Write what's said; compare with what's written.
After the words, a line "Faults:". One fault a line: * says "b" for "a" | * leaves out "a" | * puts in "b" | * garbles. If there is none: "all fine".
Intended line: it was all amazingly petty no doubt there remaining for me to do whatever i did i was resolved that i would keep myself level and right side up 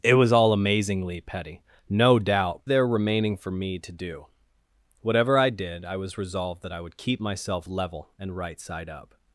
it was all amazingly petty no doubt there remaining for me to do whatever i did i was resolved that i would keep myself level and right side up
Faults:
all fine